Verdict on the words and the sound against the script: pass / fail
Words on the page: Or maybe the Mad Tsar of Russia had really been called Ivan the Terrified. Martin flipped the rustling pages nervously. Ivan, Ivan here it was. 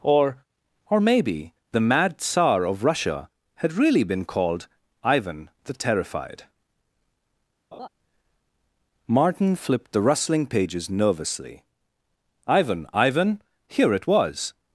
fail